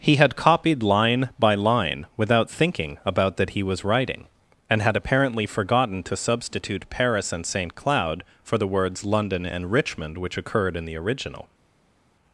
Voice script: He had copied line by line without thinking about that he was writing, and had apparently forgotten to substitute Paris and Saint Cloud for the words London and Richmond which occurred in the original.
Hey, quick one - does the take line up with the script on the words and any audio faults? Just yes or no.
yes